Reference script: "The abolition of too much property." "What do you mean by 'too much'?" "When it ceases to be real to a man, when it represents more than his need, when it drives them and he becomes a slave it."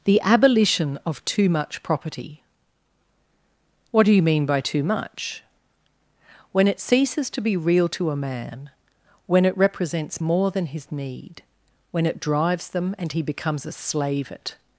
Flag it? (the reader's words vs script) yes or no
no